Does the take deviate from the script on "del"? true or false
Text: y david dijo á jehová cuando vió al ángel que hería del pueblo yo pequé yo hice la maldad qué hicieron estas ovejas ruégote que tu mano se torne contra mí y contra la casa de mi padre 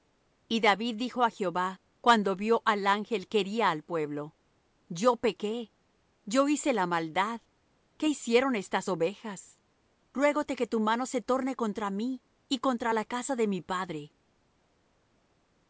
true